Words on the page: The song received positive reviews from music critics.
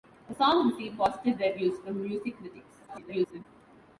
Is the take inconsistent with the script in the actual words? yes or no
yes